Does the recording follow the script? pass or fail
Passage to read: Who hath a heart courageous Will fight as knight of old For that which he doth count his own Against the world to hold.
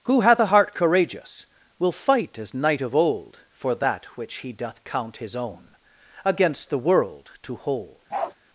pass